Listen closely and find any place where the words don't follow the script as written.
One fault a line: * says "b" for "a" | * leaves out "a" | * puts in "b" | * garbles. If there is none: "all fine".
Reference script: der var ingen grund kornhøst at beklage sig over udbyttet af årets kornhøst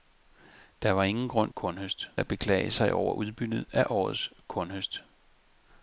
all fine